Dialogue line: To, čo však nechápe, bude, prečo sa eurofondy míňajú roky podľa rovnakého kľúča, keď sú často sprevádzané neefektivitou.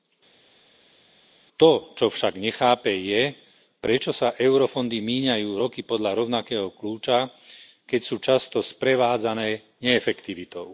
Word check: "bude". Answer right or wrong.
wrong